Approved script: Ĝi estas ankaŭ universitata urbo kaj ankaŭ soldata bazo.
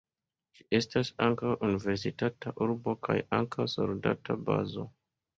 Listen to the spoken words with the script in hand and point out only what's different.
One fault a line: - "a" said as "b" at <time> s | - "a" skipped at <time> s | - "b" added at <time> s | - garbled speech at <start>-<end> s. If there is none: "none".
none